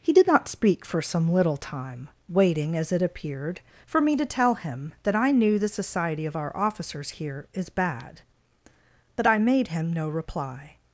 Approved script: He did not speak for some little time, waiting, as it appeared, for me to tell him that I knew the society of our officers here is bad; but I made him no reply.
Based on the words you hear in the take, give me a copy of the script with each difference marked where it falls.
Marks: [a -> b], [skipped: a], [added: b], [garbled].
He did not speak for some little time, waiting, as it appeared, for me to tell him that I knew the society of our officers here is bad; but I made him no reply.